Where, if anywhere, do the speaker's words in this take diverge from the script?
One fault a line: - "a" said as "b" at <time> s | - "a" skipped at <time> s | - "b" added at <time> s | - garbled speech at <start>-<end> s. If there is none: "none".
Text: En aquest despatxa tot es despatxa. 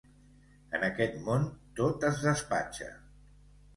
- "despatxa" said as "món" at 1.3 s